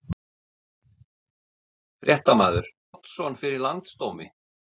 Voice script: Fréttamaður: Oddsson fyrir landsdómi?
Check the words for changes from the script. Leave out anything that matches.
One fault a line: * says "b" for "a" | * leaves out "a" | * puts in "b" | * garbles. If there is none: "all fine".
all fine